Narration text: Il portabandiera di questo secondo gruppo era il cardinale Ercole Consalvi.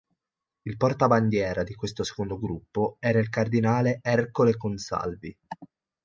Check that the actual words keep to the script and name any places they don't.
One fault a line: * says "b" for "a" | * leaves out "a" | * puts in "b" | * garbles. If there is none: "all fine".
all fine